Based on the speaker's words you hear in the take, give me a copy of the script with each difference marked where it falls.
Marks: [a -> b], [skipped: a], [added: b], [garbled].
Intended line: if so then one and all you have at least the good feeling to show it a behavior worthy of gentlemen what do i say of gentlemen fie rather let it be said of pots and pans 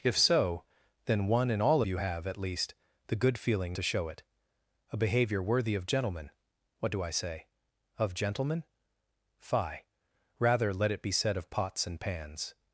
if so then one and all you have at least the good feeling to show it a behavior worthy of gentlemen what do i say of gentlemen fie rather let it be said of pots and pans